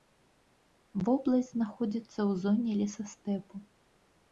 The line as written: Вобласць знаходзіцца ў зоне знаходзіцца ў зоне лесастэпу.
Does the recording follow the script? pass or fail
fail